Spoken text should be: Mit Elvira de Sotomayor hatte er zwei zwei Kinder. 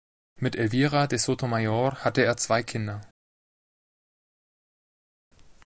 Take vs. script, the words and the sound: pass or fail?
fail